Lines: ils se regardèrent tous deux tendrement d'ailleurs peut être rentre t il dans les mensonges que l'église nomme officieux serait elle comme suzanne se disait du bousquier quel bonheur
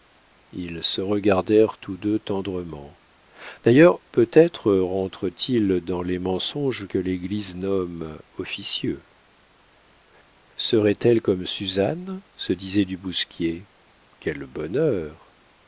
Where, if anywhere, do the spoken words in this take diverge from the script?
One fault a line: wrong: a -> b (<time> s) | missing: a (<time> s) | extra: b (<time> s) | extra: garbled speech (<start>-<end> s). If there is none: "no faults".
no faults